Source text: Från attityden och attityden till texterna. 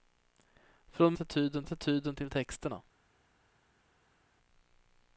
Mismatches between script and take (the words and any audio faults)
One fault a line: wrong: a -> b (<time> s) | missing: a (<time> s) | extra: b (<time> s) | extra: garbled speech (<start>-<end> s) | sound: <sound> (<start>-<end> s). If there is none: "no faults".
no faults